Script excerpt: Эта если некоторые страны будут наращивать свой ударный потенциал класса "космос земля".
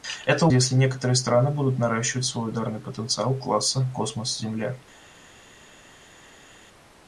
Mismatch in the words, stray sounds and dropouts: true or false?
false